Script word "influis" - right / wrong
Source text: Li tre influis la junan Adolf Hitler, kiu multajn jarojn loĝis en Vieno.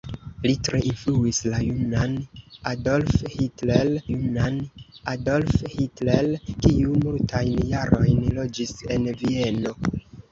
right